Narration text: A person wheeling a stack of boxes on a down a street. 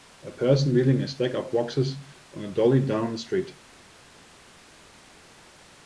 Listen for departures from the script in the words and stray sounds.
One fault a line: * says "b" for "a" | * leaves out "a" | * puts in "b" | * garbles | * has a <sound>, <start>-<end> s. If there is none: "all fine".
* puts in "dolly"